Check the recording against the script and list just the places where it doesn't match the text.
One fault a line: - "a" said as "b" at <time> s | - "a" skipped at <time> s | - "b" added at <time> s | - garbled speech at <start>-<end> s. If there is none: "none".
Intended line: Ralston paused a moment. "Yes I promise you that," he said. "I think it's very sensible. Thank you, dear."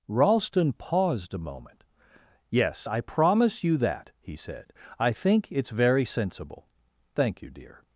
none